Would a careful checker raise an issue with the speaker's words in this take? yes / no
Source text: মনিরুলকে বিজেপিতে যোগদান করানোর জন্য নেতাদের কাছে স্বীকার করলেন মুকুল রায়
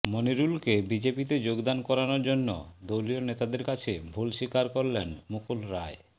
yes